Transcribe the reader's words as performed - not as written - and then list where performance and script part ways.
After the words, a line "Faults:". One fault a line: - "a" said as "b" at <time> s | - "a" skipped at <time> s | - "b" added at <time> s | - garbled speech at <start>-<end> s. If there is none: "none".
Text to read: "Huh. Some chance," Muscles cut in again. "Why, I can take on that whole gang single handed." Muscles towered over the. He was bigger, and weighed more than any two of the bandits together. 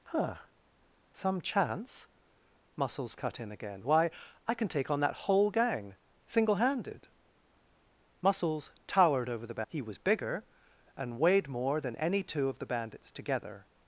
"Huh. Some chance," Muscles cut in again. "Why, I can take on that whole gang single handed." Muscles towered over the. He was bigger, and weighed more than any two of the bandits together.
Faults:
none